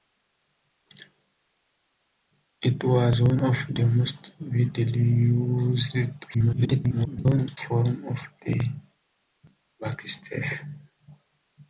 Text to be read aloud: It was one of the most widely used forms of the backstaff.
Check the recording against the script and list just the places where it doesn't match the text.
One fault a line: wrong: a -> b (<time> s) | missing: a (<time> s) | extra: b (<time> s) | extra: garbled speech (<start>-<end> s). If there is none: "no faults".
extra: garbled speech (6.3-7.6 s)